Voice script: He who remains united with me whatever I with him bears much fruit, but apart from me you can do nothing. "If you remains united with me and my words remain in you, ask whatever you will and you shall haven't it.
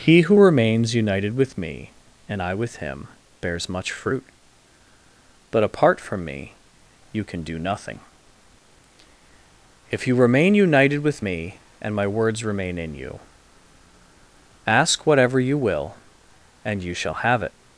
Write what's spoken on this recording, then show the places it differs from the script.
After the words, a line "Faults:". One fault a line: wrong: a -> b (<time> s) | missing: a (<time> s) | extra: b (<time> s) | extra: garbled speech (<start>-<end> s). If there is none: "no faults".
He who remains united with me and I with him bears much fruit, but apart from me you can do nothing. "If you remain united with me and my words remain in you, ask whatever you will and you shall have it.
Faults:
wrong: whatever -> and (2.3 s)
wrong: remains -> remain (10.1 s)
wrong: haven't -> have (17.1 s)